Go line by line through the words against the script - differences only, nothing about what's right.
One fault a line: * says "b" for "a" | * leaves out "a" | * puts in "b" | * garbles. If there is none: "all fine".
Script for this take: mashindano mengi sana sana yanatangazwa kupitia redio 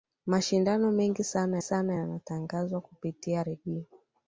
all fine